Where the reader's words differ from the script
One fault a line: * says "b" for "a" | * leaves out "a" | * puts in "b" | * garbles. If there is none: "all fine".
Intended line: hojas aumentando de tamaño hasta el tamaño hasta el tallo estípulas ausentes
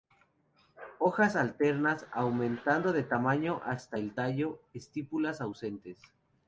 * puts in "alternas"
* leaves out "tamaño hasta el"